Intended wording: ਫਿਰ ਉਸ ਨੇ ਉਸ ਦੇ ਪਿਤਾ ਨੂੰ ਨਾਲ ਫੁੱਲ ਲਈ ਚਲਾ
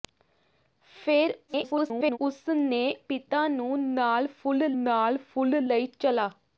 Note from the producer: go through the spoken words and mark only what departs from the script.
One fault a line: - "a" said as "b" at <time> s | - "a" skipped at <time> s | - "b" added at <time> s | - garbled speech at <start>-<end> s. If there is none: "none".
- garbled speech at 1.5-2.2 s
- "ਉਸ ਦੇ ਪਿਤਾ ਨੂੰ" said as "ਪਿਤਾ ਨੂੰ ਨਾਲ ਫੁੱਲ" at 3.1 s